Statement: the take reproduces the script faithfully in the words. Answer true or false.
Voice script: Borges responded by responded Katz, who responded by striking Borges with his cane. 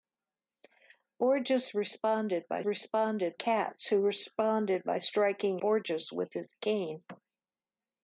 true